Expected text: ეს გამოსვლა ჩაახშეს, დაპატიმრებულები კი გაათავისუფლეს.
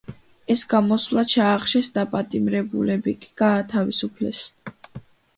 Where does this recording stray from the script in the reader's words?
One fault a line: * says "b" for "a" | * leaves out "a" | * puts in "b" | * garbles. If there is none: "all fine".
all fine